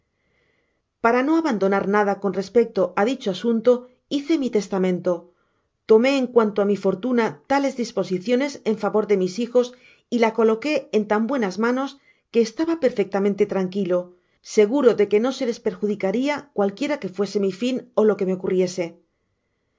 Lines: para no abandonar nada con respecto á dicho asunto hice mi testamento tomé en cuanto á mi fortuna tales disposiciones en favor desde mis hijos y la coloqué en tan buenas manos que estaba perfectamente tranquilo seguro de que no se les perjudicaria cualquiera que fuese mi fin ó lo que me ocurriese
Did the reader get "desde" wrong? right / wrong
wrong